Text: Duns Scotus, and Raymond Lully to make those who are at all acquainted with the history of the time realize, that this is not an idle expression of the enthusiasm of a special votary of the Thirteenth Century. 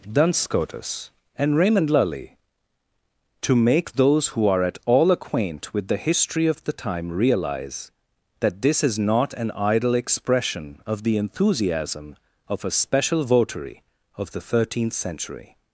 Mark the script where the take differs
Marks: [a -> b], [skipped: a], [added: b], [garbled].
Duns Scotus, and Raymond Lully to make those who are at all [acquainted -> acquaint] with the history of the time realize, that this is not an idle expression of the enthusiasm of a special votary of the Thirteenth Century.